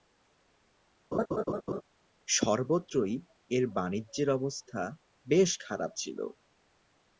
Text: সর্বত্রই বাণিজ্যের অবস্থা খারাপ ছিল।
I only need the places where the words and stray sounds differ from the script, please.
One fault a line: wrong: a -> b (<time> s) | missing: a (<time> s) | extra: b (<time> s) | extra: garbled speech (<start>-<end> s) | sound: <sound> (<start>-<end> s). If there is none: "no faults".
sound: laugh (1.1-1.8 s)
extra: এর (3.5 s)
extra: বেশ (5.3 s)